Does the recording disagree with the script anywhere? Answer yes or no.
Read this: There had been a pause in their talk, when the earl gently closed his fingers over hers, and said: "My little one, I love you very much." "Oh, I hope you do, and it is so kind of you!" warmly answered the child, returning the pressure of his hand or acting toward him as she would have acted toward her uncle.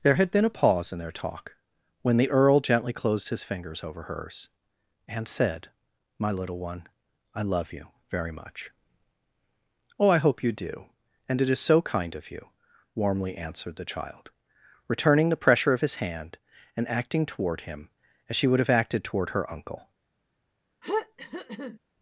yes